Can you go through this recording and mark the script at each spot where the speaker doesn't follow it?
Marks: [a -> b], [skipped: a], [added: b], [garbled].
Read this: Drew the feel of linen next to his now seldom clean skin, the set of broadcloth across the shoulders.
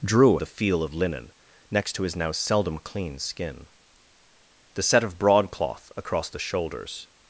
Drew the feel of linen next to his now seldom clean skin, the set of broadcloth across the shoulders.